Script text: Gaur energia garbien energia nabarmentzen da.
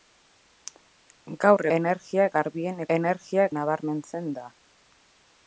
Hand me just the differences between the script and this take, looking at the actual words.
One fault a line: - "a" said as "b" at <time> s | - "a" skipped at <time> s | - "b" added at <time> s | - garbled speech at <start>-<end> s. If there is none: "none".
none